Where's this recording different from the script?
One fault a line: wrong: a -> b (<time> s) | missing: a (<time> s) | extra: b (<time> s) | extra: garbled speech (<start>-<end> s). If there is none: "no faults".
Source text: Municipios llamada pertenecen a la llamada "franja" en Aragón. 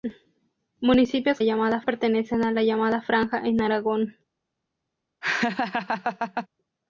no faults